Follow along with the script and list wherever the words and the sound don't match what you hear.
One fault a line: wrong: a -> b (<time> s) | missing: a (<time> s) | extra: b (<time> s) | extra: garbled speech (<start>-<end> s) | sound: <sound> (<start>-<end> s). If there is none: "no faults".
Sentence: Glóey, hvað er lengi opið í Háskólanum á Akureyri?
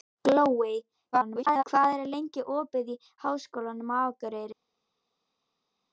extra: garbled speech (1.1-1.6 s)